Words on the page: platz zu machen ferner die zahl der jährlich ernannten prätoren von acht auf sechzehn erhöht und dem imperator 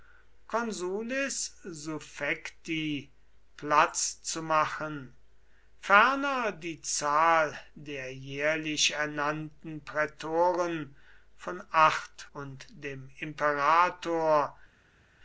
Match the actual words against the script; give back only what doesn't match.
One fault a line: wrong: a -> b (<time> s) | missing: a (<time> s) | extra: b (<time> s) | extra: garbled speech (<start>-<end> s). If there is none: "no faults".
missing: auf sechzehn erhöht (12.3 s)